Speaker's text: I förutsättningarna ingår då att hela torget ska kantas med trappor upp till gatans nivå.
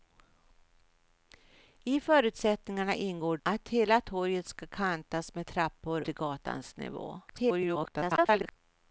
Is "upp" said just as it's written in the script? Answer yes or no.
no